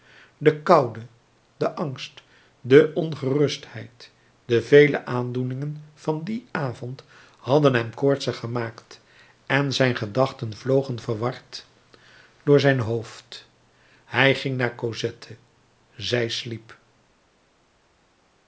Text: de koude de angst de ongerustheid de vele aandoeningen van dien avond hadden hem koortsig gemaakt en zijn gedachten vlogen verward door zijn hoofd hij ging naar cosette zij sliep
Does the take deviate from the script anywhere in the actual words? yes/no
no